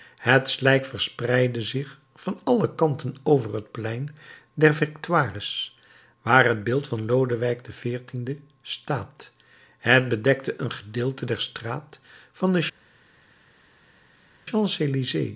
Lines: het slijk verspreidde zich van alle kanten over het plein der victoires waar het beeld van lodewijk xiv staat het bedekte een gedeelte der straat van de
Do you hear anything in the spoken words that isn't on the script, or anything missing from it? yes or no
no